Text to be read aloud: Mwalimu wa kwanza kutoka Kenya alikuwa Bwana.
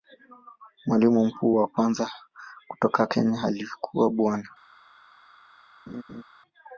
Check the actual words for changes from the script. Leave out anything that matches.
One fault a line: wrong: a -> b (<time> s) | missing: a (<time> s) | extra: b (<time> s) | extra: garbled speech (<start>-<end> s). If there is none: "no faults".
extra: mkuu (1.2 s)